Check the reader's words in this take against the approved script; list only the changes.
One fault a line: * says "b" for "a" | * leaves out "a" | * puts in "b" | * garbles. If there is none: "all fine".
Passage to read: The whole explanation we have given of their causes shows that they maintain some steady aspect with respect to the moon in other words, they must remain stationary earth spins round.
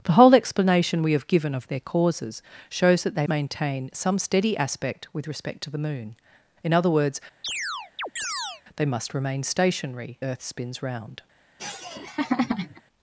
all fine